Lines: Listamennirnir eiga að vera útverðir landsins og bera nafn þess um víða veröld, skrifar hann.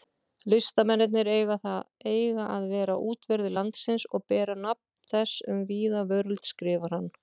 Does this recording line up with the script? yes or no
yes